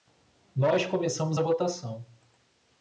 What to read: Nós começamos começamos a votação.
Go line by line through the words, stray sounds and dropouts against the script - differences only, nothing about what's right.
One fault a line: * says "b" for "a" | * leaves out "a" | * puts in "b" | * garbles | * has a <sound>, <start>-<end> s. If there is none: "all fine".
* leaves out "começamos"